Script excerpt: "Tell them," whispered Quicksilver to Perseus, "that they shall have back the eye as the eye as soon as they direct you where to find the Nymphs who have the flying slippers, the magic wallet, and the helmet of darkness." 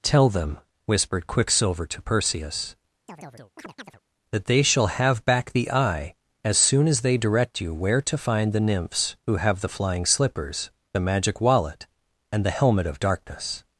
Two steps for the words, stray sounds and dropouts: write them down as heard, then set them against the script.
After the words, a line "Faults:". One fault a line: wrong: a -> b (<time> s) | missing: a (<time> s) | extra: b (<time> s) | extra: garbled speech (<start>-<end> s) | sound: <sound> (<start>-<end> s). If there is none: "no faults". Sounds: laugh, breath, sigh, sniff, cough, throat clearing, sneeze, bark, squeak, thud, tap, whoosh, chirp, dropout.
"Tell them," whispered Quicksilver to Perseus, "that they shall have back the eye as soon as they direct you where to find the Nymphs who have the flying slippers, the magic wallet, and the helmet of darkness."
Faults:
sound: chirp (3.1-4.0 s)
missing: the eye as (6.6 s)